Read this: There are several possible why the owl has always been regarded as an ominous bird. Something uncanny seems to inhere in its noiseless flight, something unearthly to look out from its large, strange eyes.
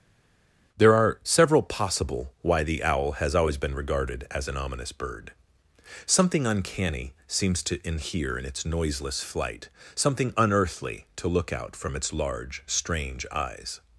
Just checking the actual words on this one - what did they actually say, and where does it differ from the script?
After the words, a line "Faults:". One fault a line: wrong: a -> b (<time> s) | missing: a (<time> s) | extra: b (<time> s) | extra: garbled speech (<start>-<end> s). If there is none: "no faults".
There are several possible why the owl has always been regarded as an ominous bird. Something uncanny seems to inhere in its noiseless flight, something unearthly to look out from its large, strange eyes.
Faults:
no faults